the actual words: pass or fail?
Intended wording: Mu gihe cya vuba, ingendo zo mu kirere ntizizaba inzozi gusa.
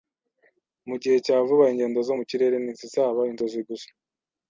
pass